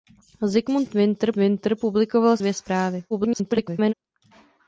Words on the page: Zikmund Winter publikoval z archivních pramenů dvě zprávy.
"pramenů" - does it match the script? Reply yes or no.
no